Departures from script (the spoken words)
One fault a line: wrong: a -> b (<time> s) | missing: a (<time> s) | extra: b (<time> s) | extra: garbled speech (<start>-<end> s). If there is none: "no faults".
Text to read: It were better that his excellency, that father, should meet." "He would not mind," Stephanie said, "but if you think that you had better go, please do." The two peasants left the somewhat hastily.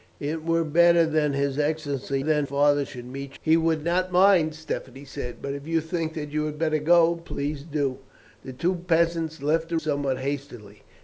no faults